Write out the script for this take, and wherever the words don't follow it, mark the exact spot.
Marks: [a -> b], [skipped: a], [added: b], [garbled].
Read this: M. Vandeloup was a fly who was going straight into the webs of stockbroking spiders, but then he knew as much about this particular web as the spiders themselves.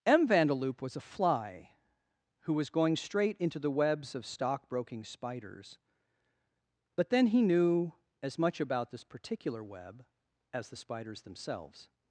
M. Vandeloup was a fly who was going straight into the webs of stockbroking spiders, but then he knew as much about this particular web as the spiders themselves.